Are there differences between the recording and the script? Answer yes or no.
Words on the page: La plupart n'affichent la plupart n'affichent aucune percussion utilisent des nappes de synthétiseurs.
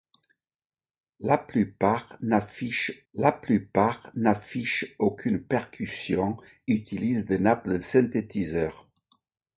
no